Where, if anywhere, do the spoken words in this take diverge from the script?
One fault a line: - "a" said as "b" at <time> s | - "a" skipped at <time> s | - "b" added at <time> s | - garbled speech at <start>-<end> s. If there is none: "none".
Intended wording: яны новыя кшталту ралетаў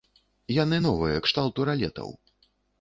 none